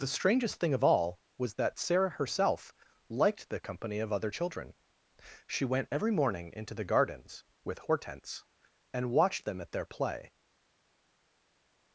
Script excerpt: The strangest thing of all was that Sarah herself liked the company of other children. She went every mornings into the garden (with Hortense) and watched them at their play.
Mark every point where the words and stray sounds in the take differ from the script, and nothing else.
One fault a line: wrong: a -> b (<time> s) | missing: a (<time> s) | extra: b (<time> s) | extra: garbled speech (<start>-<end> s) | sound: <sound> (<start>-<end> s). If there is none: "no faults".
wrong: mornings -> morning (6.1 s)
wrong: garden -> gardens (6.9 s)